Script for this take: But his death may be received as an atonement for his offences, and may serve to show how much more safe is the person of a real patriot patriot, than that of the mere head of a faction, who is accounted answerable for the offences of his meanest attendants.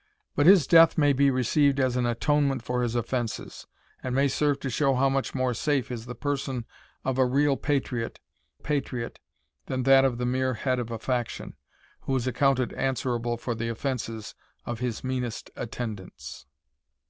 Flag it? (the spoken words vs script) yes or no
no